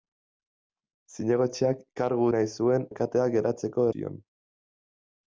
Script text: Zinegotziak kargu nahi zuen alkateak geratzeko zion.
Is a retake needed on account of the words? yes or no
no